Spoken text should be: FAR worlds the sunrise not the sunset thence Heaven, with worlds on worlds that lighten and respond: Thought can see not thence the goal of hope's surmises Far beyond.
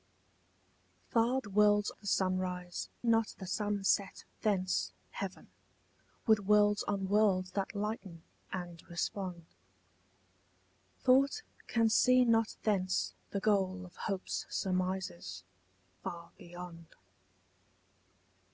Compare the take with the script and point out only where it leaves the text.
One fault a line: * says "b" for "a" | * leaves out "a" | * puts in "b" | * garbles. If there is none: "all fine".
all fine